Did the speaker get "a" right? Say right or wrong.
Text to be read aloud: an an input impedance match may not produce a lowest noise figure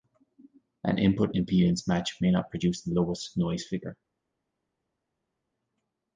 wrong